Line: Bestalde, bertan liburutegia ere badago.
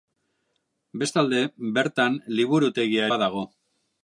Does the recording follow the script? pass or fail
fail